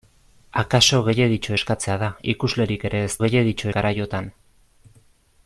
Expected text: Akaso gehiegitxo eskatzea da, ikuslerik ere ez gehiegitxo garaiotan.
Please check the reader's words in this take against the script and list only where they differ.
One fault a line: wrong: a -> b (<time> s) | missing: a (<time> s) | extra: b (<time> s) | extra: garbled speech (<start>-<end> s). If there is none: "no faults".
no faults